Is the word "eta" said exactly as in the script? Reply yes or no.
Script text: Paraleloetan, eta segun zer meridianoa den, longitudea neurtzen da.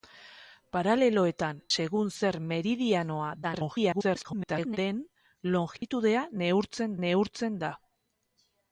no